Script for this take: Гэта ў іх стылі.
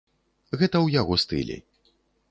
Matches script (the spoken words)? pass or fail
fail